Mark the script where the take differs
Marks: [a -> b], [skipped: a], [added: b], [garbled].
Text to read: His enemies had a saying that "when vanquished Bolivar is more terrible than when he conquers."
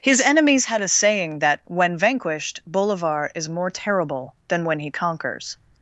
His enemies had a saying that "when vanquished Bolivar is more terrible than when he conquers."